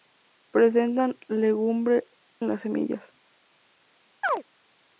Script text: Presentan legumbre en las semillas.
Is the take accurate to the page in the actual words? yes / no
yes